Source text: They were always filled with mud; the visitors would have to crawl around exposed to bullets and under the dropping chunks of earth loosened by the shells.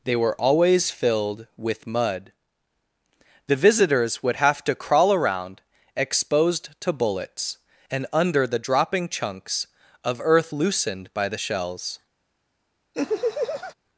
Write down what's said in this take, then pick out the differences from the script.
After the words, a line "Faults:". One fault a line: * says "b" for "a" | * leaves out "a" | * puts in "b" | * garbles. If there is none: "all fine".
They were always filled with mud; the visitors would have to crawl around exposed to bullets and under the dropping chunks of earth loosened by the shells.
Faults:
all fine